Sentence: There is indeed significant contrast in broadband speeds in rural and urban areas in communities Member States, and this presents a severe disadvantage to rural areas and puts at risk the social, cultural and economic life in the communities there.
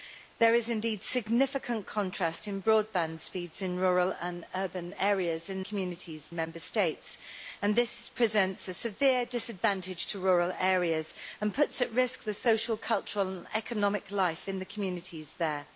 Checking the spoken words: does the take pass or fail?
pass